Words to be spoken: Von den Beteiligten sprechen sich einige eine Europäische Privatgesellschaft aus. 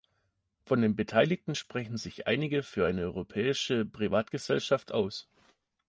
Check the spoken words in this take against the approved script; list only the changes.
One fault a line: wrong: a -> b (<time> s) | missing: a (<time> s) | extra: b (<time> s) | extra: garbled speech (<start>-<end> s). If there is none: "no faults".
extra: für (2.6 s)